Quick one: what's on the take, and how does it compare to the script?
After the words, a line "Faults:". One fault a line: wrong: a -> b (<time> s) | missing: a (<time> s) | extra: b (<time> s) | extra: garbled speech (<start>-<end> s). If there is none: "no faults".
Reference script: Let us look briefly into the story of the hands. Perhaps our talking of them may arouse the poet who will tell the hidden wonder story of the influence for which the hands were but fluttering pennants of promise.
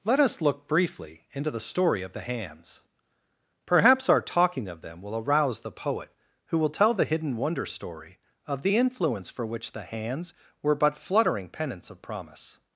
Let us look briefly into the story of the hands. Perhaps our talking of them will arouse the poet who will tell the hidden wonder story of the influence for which the hands were but fluttering pennants of promise.
Faults:
wrong: may -> will (5.0 s)